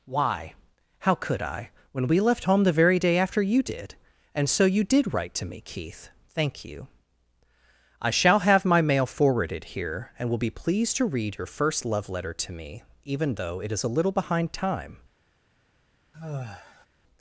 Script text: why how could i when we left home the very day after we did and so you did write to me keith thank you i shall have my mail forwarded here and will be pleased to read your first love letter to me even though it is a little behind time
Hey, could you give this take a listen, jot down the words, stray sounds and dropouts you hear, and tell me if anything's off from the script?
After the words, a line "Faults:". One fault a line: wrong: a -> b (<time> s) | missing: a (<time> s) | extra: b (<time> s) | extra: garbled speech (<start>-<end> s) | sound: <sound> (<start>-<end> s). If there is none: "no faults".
why how could i when we left home the very day after you did and so you did write to me keith thank you i shall have my mail forwarded here and will be pleased to read your first love letter to me even though it is a little behind time
Faults:
wrong: we -> you (3.4 s)
sound: sigh (16.1-16.9 s)